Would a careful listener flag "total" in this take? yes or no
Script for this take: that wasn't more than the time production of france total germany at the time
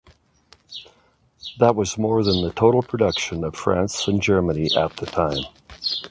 yes